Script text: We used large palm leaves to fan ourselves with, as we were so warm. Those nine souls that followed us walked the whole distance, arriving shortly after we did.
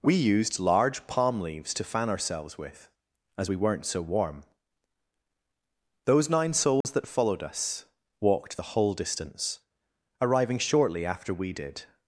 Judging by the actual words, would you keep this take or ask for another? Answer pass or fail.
fail